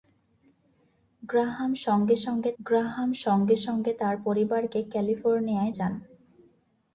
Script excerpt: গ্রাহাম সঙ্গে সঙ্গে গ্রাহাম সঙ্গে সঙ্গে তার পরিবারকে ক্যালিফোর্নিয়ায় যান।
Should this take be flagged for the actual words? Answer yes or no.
no